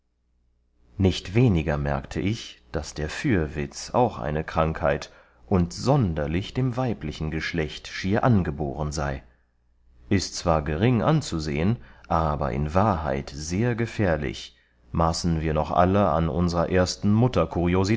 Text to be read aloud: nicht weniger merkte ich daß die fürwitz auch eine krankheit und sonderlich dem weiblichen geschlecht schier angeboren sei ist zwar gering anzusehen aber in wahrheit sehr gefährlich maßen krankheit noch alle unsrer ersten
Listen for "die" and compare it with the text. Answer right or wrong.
wrong